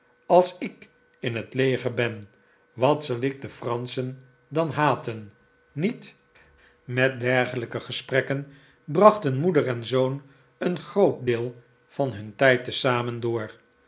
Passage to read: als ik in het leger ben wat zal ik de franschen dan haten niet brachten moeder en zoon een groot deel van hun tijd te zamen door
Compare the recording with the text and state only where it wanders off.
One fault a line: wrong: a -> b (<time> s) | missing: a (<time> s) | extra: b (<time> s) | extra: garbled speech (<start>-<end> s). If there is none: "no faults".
extra: met dergelijke gesprekken (6.8 s)